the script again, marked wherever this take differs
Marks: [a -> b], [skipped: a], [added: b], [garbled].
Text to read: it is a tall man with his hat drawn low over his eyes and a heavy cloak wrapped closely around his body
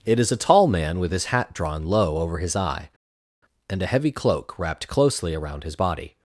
it is a tall man with his hat drawn low over his [eyes -> eye] and a heavy cloak wrapped closely around his body